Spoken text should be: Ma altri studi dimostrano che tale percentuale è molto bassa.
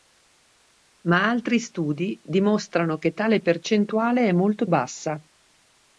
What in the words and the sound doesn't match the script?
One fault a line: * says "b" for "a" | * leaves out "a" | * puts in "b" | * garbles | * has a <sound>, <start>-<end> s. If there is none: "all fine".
all fine